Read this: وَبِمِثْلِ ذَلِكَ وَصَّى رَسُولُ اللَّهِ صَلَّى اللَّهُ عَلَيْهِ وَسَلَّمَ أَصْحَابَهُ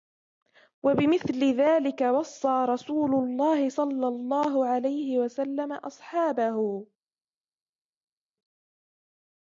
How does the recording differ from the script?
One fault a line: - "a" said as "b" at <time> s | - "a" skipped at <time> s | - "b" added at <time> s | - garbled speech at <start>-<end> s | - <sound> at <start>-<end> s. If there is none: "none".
none